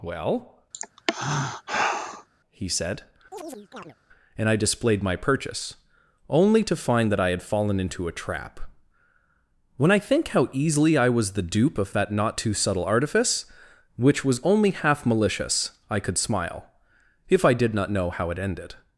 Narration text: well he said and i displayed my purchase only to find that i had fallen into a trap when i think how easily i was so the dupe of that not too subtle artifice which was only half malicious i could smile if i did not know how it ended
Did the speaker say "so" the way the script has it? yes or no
no